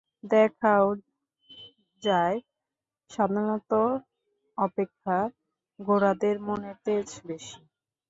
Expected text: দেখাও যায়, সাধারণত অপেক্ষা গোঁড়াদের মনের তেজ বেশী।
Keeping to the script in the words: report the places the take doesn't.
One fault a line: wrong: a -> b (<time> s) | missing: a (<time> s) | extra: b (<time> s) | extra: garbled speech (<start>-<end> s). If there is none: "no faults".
no faults